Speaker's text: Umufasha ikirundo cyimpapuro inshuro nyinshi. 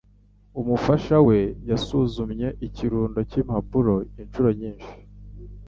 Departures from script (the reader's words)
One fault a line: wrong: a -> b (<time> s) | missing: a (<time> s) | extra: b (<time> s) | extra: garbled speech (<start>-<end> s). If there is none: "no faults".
extra: we yasuzumye (1.3 s)